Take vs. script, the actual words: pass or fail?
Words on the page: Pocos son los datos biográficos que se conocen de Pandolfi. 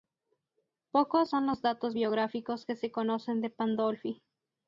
pass